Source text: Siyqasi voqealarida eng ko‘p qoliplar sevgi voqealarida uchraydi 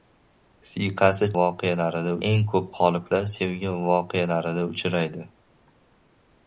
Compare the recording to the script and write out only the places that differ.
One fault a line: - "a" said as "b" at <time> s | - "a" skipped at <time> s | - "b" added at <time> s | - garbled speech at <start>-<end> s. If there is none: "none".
none